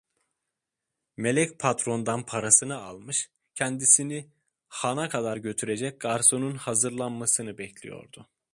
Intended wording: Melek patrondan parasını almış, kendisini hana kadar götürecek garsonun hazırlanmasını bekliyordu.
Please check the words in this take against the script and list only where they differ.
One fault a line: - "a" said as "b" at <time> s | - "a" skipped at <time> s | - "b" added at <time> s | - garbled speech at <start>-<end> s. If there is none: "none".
none